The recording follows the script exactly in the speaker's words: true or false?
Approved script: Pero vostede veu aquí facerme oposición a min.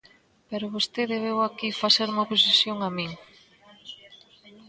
true